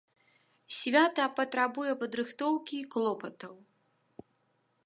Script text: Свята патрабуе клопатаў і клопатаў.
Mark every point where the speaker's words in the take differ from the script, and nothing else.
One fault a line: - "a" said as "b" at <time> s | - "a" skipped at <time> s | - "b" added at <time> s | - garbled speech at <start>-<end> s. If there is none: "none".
- "клопатаў" said as "падрыхтоўкі" at 2.0 s